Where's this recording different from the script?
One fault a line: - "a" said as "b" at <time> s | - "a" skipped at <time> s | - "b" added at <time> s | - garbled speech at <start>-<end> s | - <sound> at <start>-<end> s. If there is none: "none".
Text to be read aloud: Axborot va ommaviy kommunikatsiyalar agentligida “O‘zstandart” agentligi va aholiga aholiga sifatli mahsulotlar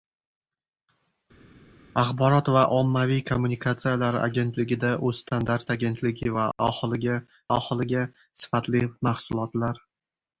none